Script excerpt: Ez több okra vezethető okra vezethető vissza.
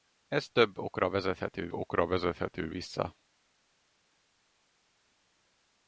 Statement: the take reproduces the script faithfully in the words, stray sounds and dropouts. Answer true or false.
true